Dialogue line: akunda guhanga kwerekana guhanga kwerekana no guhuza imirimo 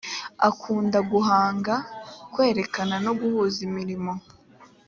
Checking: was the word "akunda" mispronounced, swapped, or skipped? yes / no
no